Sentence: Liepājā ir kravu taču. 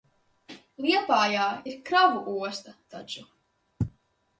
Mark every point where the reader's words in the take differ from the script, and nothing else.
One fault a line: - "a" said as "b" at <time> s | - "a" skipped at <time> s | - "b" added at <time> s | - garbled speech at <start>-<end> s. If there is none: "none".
- "osta" added at 2.5 s